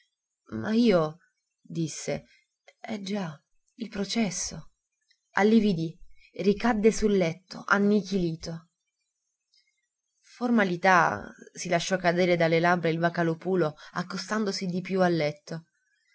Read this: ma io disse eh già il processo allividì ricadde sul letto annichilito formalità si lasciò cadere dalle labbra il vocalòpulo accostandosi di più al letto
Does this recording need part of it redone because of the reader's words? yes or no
no